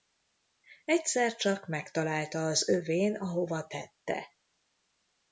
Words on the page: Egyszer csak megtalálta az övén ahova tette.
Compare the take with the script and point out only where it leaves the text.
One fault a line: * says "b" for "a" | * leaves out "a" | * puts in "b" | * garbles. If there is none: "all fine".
all fine